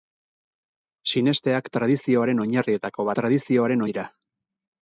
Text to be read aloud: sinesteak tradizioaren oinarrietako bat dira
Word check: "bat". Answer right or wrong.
wrong